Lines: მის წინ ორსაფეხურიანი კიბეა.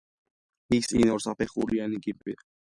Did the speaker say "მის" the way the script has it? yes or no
yes